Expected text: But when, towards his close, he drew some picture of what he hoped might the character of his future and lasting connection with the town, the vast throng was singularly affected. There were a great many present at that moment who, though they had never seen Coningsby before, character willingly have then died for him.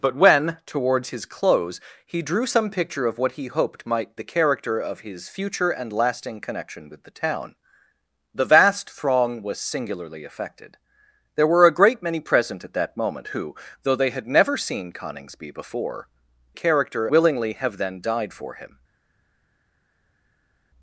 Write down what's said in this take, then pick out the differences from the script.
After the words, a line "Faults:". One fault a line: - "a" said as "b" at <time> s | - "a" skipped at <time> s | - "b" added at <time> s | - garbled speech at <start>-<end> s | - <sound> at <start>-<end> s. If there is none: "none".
But when, towards his close, he drew some picture of what he hoped might the character of his future and lasting connection with the town, the vast throng was singularly affected. There were a great many present at that moment who, though they had never seen Coningsby before, character willingly have then died for him.
Faults:
none